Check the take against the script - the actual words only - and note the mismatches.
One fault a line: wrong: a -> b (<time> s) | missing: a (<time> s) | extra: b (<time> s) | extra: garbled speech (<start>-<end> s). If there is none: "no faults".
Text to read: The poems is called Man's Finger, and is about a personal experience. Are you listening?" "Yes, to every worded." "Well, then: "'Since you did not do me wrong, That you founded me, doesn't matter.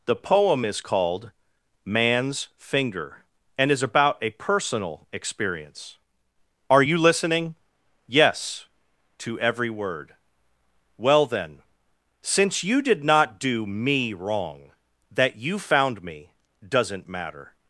wrong: poems -> poem (0.1 s)
wrong: worded -> word (9.7 s)
wrong: founded -> found (15.6 s)